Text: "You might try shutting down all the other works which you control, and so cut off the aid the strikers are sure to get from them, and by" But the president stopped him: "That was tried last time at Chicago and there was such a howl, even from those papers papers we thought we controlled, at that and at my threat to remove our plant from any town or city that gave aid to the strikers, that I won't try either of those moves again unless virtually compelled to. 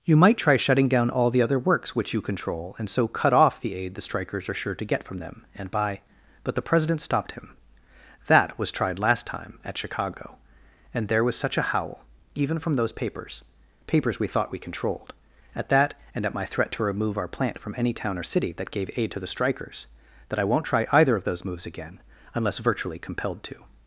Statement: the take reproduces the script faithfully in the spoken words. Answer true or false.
true